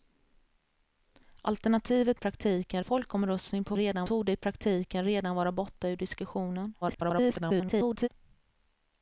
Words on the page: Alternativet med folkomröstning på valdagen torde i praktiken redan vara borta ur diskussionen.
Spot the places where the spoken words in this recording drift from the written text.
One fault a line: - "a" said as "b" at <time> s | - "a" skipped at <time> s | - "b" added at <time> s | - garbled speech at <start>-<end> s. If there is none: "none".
- "med" said as "praktiken" at 2.1 s
- "valdagen" said as "redan" at 3.8 s
- garbled speech at 6.8-8.1 s